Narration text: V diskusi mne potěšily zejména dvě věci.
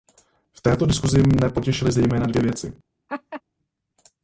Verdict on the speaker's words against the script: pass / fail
fail